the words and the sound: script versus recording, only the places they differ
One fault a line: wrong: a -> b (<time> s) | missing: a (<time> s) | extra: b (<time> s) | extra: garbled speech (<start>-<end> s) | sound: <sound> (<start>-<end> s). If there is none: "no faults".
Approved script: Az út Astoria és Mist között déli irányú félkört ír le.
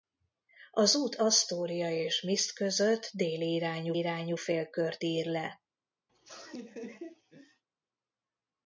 extra: irányú (4.0 s)
sound: laugh (6.1-7.6 s)